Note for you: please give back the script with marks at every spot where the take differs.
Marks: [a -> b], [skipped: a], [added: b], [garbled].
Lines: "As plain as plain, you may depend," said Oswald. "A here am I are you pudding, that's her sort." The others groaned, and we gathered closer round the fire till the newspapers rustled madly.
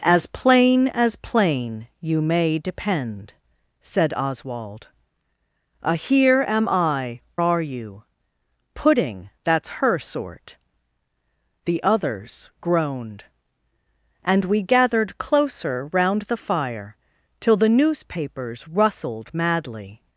"As plain as plain, you may depend," said Oswald. "A here am I are you pudding, that's her sort." The others groaned, and we gathered closer round the fire till the newspapers rustled madly.